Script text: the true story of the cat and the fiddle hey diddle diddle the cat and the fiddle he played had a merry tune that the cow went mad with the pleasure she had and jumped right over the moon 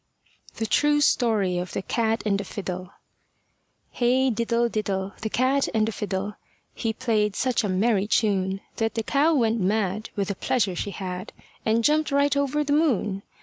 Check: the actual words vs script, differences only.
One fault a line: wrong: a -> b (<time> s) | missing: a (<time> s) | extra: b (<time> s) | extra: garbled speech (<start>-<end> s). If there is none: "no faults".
wrong: had -> such (7.3 s)